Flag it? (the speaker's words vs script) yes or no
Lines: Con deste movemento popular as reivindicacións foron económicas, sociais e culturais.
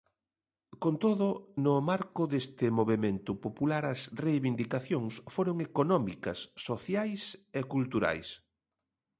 yes